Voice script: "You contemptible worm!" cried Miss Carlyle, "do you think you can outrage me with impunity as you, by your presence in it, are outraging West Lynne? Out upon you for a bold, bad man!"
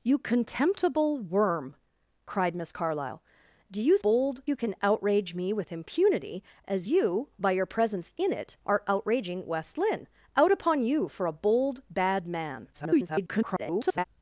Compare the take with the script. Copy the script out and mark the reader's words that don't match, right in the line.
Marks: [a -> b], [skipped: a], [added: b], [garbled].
"You contemptible worm!" cried Miss Carlyle, "do you [think -> bold] you can outrage me with impunity as you, by your presence in it, are outraging West Lynne? Out upon you for a bold, bad man!" [garbled]